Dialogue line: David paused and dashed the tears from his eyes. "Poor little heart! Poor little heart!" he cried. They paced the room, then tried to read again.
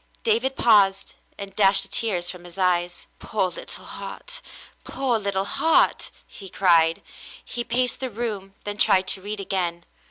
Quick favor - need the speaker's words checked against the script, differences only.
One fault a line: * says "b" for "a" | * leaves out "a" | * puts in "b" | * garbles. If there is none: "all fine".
* says "He" for "They"